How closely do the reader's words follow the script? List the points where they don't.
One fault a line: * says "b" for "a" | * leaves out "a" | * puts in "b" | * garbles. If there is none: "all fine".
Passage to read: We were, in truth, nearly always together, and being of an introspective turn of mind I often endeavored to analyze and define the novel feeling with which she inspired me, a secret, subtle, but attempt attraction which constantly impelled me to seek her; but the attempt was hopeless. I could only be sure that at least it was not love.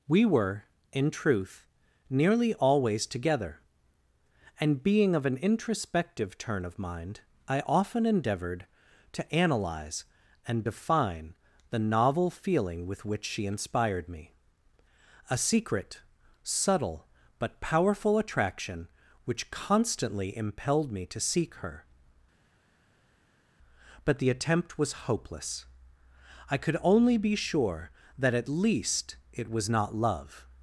* says "powerful" for "attempt"